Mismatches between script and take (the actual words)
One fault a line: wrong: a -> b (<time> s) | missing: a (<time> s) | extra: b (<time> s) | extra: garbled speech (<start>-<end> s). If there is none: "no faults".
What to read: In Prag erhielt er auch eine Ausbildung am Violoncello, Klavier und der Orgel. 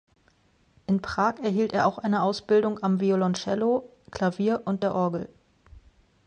no faults